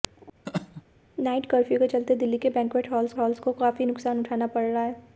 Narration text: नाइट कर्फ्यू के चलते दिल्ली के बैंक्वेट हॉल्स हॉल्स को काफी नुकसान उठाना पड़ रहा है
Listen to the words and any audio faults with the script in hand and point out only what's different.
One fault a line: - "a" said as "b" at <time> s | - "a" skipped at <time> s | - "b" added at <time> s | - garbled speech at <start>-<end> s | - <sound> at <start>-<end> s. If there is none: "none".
- laugh at 0.5-0.8 s